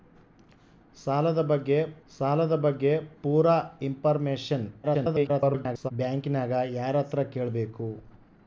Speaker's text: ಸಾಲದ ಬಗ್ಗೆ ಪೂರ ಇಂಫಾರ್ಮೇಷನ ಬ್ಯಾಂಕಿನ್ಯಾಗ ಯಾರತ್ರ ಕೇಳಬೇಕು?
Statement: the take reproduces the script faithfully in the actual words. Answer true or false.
false